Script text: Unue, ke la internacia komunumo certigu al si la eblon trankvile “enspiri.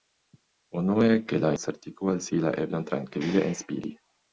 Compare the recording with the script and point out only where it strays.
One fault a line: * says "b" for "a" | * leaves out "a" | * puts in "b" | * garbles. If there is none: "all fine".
* leaves out "internacia komunumo"